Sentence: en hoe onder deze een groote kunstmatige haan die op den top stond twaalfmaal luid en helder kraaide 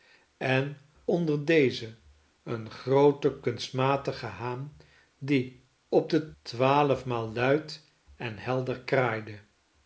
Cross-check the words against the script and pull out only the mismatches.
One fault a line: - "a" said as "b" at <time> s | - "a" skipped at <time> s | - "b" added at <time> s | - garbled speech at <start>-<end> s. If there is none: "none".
- "hoe" skipped at 0.8 s
- "top stond" skipped at 6.3 s